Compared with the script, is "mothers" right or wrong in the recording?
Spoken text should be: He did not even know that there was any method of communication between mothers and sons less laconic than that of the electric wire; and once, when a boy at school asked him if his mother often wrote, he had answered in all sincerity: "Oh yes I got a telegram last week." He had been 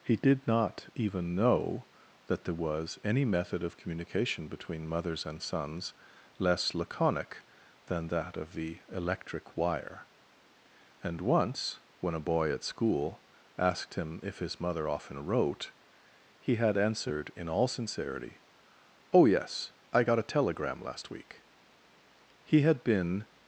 right